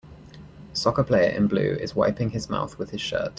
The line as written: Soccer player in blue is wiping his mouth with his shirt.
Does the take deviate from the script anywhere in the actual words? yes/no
no